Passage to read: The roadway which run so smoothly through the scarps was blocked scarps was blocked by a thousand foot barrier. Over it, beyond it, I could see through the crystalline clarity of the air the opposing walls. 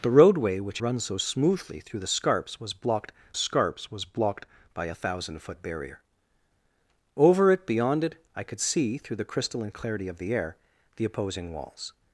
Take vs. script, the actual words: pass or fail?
pass